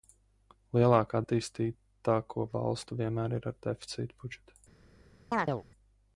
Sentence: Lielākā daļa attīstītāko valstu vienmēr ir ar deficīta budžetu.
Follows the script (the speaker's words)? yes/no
no